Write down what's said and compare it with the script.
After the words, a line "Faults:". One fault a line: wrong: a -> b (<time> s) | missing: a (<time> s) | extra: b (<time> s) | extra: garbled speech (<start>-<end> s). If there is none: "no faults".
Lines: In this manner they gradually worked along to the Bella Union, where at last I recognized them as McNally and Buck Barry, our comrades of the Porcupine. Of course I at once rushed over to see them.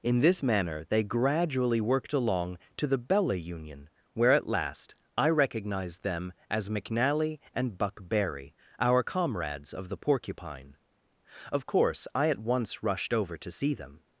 In this manner they gradually worked along to the Bella Union, where at last I recognized them as McNally and Buck Barry, our comrades of the Porcupine. Of course I at once rushed over to see them.
Faults:
no faults